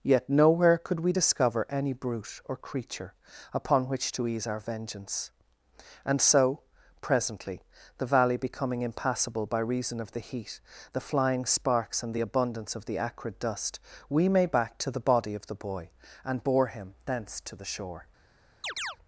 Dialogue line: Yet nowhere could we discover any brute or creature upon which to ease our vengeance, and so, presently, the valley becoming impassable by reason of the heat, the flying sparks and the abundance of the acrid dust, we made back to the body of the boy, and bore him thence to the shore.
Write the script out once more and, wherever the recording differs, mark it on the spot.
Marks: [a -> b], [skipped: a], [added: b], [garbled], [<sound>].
Yet nowhere could we discover any brute or creature upon which to ease our vengeance, and so, presently, the valley becoming impassable by reason of the heat, the flying sparks and the abundance of the acrid dust, we made back to the body of the boy, and bore him thence to the shore. [chirp]